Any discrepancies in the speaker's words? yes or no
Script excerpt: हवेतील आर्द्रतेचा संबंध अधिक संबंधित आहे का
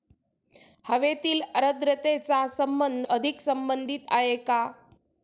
no